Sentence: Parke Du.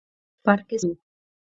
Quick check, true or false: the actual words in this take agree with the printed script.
true